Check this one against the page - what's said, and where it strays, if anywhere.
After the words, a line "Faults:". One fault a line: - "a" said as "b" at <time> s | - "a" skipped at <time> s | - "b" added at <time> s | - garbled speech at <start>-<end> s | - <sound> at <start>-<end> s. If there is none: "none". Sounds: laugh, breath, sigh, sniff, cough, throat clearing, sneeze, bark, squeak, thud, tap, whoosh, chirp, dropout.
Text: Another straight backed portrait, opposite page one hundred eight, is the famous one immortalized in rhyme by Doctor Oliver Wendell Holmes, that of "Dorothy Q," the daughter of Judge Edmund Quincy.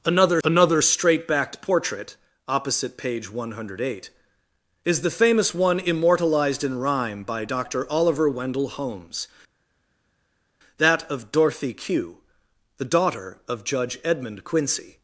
Another another straight backed portrait, opposite page one hundred eight, is the famous one immortalized in rhyme by Doctor Oliver Wendell Holmes, that of "Dorothy Q," the daughter of Judge Edmund Quincy.
Faults:
- "another" added at 0.4 s